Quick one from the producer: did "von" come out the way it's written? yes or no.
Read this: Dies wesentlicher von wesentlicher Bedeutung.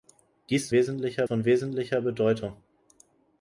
yes